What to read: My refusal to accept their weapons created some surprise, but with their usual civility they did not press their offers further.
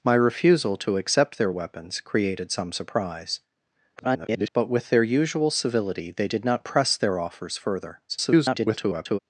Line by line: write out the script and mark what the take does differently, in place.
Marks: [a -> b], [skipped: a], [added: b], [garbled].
My refusal to accept their weapons created some surprise, [garbled] but with their usual civility they did not press their offers further. [garbled]